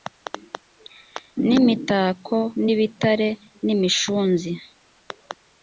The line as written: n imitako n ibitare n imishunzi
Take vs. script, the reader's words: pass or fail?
pass